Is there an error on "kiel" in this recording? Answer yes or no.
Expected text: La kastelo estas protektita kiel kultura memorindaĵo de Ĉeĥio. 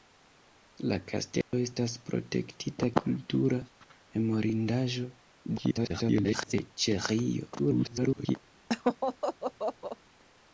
yes